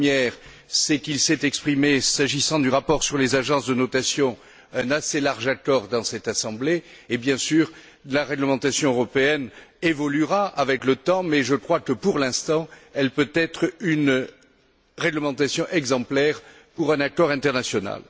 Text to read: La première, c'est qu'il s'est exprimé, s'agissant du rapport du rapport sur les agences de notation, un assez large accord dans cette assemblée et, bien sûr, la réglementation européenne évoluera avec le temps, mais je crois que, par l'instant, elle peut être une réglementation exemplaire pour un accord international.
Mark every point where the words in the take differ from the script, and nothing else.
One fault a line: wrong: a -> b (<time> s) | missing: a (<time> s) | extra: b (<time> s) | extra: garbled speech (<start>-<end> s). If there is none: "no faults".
missing: du rapport (3.0 s)
wrong: par -> pour (11.9 s)